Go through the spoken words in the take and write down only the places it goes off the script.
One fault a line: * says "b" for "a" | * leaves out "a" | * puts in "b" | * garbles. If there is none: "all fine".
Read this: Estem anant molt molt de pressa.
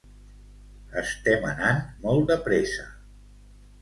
* leaves out "molt"